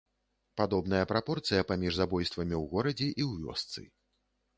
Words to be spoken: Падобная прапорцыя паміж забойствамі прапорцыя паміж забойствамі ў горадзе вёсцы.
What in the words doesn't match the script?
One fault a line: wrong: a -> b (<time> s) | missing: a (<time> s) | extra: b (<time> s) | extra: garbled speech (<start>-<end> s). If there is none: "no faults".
wrong: прапорцыя паміж забойствамі -> ў горадзе і (2.6 s)
missing: горадзе (3.4 s)